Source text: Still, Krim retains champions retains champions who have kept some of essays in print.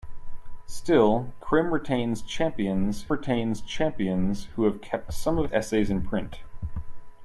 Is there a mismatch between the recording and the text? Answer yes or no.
no